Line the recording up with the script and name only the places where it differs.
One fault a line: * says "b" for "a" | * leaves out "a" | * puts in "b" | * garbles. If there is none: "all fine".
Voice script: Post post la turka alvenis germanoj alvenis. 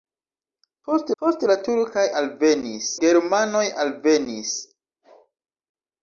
all fine